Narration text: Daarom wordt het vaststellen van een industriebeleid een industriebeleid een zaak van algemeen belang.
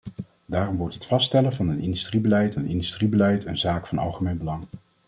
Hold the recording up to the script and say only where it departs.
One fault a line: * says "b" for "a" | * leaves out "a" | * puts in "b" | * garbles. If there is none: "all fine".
all fine